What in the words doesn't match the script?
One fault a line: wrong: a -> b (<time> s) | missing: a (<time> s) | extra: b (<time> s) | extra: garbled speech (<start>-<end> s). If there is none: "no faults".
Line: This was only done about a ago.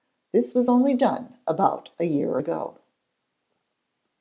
extra: year (2.0 s)